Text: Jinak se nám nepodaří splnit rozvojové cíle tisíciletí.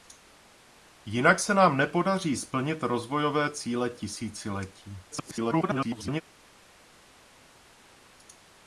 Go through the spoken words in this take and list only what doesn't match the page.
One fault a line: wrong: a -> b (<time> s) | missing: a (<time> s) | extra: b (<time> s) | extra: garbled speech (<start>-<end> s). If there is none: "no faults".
extra: garbled speech (5.1-6.2 s)